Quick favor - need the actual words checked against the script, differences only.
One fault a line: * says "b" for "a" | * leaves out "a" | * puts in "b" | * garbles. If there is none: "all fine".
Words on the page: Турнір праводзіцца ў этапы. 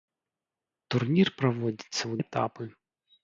all fine